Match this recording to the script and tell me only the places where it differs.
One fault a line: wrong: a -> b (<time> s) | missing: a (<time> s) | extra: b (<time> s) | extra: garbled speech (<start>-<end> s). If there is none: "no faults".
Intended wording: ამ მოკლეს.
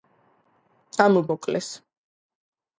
no faults